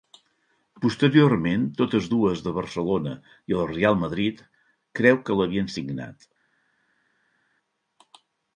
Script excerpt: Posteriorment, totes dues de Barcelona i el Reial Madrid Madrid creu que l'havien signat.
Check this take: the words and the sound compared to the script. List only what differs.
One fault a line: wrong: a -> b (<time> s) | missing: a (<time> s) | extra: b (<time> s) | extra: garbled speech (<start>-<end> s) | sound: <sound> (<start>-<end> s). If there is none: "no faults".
missing: Madrid (4.4 s)